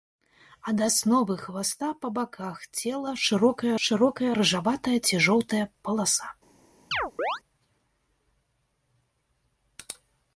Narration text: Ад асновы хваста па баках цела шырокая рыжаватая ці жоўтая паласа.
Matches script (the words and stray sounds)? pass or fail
fail